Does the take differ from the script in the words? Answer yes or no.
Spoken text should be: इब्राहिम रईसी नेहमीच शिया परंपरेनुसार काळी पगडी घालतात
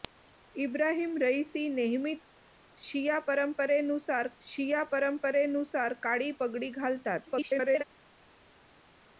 yes